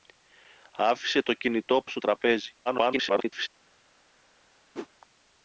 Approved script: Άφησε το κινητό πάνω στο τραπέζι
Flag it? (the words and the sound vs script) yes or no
yes